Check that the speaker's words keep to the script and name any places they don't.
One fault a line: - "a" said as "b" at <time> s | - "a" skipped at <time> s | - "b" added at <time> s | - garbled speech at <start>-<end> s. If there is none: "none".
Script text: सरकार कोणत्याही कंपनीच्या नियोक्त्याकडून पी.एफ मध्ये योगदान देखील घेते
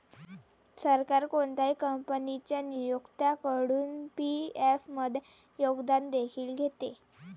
none